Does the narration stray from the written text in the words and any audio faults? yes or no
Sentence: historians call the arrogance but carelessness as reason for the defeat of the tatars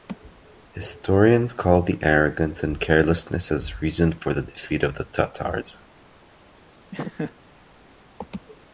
yes